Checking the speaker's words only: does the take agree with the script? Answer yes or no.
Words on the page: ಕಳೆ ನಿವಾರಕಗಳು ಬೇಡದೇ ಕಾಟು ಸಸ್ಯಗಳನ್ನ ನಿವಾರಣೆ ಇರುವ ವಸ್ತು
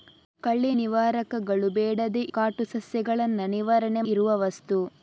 yes